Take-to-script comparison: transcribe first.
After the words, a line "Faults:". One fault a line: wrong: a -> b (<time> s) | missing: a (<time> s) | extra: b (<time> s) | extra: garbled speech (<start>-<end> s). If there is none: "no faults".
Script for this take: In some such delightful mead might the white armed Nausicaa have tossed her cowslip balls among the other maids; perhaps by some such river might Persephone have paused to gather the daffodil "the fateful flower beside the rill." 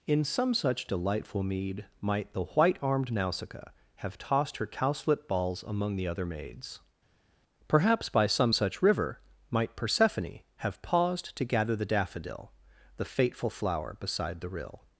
In some such delightful mead might the white armed Nausicaa have tossed her cowslip balls among the other maids; perhaps by some such river might Persephone have paused to gather the daffodil "the fateful flower beside the rill."
Faults:
no faults